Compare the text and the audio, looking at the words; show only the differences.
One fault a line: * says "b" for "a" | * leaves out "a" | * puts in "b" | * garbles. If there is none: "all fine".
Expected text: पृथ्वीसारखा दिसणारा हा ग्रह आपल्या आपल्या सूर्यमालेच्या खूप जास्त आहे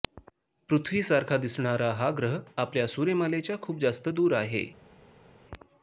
* leaves out "आपल्या"
* puts in "दूर"